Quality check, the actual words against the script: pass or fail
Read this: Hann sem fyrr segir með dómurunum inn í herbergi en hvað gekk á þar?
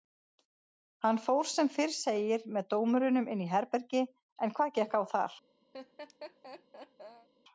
fail